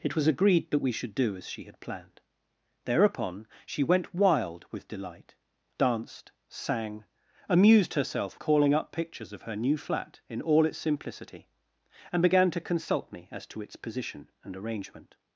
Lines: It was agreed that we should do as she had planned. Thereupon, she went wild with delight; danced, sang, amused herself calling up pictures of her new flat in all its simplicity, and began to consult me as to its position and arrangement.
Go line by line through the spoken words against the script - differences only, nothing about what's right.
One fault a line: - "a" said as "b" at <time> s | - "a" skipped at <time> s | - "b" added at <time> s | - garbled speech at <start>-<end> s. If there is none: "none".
none